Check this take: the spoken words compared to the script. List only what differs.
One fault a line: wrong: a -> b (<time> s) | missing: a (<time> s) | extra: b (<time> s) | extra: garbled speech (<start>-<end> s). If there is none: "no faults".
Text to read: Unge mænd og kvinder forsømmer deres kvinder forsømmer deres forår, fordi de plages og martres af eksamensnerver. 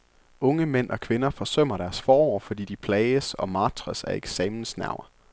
missing: kvinder forsømmer deres (2.0 s)